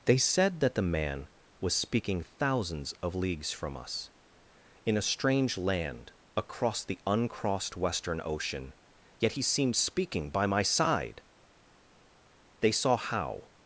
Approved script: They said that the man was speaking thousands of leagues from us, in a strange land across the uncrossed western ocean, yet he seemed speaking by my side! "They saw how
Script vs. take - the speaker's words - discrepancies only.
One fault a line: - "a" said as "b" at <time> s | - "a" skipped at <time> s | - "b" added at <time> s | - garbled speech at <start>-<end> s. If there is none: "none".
none